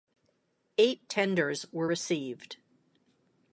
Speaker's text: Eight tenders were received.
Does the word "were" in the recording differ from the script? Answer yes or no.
no